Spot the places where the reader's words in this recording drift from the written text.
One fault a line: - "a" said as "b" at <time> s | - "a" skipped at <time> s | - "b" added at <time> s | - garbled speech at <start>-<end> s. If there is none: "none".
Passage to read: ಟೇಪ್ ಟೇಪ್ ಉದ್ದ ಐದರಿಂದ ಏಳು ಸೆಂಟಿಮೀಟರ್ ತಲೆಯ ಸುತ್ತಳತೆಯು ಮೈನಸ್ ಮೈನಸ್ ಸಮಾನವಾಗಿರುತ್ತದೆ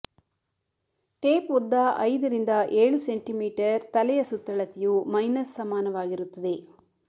- "ಟೇಪ್" skipped at 1.5 s
- "ಮೈನಸ್" skipped at 5.6 s